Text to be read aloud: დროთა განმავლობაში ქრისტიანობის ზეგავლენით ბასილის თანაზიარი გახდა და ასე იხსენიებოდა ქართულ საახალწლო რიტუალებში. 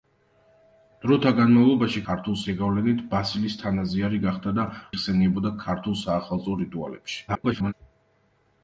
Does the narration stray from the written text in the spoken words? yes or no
yes